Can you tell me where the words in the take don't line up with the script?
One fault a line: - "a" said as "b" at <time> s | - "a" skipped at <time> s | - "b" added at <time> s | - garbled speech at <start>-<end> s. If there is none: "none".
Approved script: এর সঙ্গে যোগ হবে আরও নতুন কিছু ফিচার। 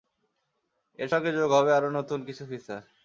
none